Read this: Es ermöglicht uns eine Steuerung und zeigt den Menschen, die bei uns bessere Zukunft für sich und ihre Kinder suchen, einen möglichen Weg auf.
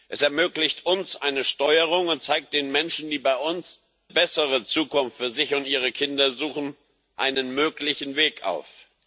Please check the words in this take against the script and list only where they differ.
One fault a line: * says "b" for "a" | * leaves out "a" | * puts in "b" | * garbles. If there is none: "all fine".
all fine